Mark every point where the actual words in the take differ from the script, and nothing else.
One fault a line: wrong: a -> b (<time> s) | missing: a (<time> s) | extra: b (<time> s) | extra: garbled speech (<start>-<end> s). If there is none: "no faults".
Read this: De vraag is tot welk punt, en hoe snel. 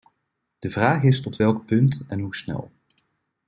no faults